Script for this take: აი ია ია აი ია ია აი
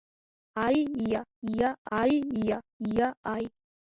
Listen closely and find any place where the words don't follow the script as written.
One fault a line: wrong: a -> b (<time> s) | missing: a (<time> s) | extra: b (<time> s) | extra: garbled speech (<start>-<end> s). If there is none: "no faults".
no faults